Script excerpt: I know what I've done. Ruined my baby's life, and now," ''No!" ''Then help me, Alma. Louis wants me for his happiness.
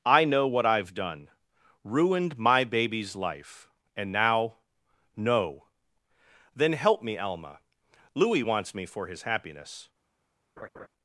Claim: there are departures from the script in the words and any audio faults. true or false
true